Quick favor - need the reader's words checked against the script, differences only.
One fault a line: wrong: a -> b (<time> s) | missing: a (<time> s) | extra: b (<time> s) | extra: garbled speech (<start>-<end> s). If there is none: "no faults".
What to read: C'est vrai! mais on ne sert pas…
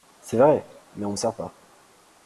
no faults